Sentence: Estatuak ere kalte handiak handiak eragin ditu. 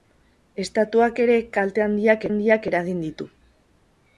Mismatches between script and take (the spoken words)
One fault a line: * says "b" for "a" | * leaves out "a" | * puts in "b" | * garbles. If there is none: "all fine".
all fine